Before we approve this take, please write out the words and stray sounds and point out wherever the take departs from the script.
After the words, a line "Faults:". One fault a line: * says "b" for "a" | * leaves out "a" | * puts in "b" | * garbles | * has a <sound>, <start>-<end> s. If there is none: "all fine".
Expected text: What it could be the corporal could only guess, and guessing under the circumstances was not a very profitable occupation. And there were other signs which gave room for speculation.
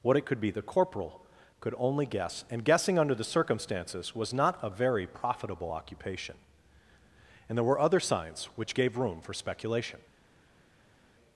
What it could be the corporal could only guess, and guessing under the circumstances was not a very profitable occupation. And there were other signs which gave room for speculation.
Faults:
all fine